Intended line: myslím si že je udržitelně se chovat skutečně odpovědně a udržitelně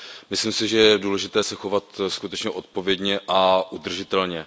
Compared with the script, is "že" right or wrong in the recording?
right